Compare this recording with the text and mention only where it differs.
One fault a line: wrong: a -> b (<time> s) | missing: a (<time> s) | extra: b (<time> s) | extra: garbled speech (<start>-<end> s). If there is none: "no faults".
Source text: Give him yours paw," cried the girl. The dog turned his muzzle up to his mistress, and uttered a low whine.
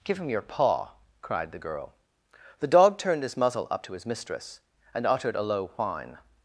wrong: yours -> your (0.3 s)